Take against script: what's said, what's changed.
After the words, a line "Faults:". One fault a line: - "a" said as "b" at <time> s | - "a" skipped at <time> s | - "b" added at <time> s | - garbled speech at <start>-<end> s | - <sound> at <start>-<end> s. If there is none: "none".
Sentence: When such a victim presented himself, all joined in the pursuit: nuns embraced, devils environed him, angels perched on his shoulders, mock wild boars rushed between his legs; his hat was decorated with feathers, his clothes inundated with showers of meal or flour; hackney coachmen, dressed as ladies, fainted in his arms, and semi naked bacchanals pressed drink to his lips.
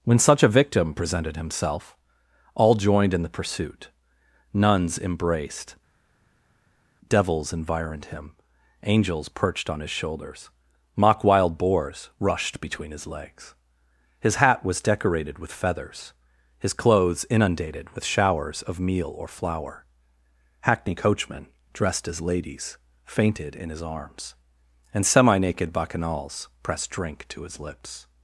When such a victim presented himself, all joined in the pursuit: nuns embraced, devils environed him, angels perched on his shoulders, mock wild boars rushed between his legs; his hat was decorated with feathers, his clothes inundated with showers of meal or flour; hackney coachmen, dressed as ladies, fainted in his arms, and semi naked bacchanals pressed drink to his lips.
Faults:
none